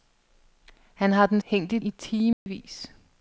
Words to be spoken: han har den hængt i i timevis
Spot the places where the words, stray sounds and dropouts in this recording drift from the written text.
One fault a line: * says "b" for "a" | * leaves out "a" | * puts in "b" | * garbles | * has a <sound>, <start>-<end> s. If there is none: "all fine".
* has a dropout, 2.3-2.5 s